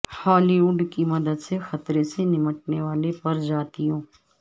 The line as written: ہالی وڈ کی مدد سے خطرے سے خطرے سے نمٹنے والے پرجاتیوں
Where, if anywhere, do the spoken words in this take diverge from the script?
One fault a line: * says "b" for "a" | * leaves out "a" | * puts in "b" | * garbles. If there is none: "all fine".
* leaves out "خطرے سے"